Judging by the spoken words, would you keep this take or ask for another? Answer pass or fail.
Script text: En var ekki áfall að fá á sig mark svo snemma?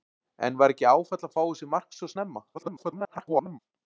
fail